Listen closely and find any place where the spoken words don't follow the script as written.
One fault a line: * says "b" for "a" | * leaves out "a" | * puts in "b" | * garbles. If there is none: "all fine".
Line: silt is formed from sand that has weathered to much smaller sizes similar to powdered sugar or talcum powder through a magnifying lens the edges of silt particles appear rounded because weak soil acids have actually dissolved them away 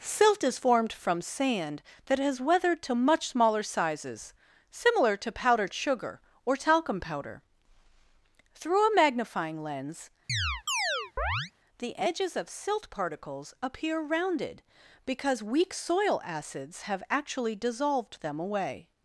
all fine